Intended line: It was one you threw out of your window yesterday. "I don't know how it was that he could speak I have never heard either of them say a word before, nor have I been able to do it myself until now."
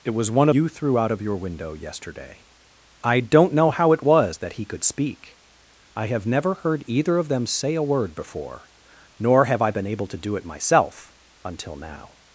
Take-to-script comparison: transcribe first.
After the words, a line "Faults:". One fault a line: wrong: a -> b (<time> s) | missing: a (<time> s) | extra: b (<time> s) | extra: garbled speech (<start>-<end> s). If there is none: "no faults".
It was one you threw out of your window yesterday. "I don't know how it was that he could speak I have never heard either of them say a word before, nor have I been able to do it myself until now."
Faults:
no faults